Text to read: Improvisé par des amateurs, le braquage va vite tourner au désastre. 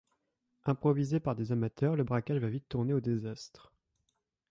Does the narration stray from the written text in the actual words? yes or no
no